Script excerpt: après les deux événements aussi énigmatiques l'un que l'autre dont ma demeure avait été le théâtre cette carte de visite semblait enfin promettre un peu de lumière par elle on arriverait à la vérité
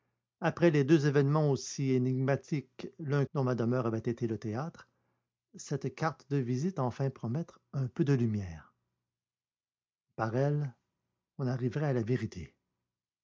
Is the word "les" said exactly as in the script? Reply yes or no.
yes